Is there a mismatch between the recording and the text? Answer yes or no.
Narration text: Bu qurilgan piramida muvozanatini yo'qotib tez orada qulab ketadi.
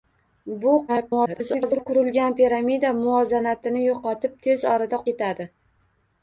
yes